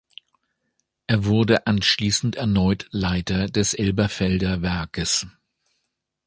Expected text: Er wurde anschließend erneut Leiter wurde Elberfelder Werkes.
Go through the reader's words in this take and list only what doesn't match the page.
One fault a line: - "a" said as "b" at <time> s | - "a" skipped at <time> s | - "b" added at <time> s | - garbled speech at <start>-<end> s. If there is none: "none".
- "wurde" said as "des" at 3.5 s